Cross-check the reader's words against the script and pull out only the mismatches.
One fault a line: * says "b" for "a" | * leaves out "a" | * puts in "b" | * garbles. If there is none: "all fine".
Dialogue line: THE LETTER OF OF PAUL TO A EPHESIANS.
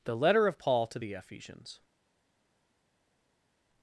* leaves out "OF"
* says "THE" for "A"